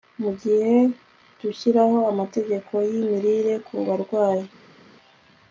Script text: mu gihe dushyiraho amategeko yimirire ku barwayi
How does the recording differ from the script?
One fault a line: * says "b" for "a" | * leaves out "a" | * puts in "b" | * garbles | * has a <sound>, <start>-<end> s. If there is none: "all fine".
all fine